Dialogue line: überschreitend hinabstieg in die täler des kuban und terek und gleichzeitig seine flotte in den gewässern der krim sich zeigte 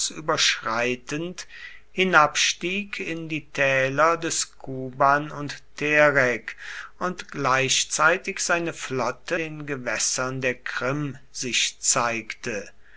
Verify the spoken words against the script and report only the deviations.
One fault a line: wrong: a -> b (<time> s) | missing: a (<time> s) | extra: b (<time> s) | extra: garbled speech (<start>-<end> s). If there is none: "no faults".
missing: in (9.3 s)